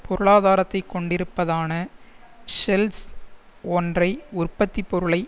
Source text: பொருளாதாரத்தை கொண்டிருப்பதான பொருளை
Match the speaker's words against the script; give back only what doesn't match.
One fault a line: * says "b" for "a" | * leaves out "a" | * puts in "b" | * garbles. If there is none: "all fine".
* puts in "ஷெல்ஸ் ஒன்றை உற்பத்தி"